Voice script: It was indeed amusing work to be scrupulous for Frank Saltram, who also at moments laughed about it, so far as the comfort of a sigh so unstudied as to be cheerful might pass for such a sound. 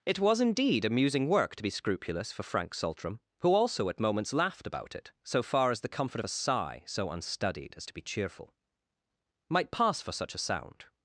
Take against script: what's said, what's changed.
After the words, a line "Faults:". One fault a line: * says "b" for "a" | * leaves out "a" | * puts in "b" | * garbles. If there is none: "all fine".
It was indeed amusing work to be scrupulous for Frank Saltram, who also at moments laughed about it, so far as the comfort of a sigh so unstudied as to be cheerful might pass for such a sound.
Faults:
all fine